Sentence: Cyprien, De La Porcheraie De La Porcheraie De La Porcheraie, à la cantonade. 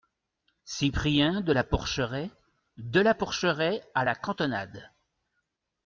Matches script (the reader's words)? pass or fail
fail